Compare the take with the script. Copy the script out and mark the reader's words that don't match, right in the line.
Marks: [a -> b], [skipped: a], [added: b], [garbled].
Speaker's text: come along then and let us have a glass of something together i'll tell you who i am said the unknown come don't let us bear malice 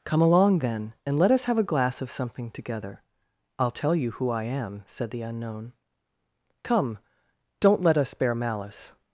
come along then and let us have a glass of something together i'll tell you who i am said the unknown come don't let us bear malice